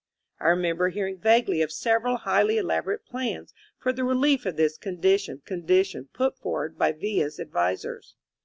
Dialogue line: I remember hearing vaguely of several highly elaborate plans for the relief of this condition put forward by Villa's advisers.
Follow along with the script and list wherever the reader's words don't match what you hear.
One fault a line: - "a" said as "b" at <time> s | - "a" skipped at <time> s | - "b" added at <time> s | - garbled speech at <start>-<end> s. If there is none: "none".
- "condition" added at 5.4 s